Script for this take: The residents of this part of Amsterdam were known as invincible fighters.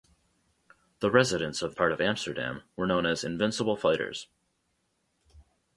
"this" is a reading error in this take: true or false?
true